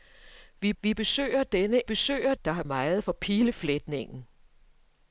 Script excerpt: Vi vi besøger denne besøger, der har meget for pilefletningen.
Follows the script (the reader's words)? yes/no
yes